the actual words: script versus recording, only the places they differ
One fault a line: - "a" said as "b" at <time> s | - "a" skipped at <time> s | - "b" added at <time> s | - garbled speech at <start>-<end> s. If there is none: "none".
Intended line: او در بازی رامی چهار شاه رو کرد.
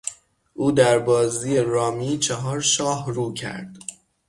none